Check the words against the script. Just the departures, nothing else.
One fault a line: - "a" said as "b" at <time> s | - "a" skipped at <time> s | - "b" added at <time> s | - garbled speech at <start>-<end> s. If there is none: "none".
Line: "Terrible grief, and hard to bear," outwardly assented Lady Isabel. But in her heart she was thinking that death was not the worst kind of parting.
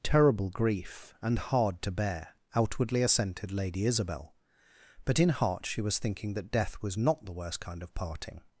- "her" skipped at 5.3 s